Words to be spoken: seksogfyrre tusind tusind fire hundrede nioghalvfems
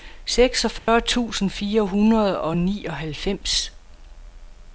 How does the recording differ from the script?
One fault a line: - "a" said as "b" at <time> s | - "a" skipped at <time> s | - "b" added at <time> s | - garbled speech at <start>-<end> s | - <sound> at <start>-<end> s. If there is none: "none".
- dropout at 0.8-0.9 s
- "tusind" skipped at 1.5 s
- "og" added at 2.4 s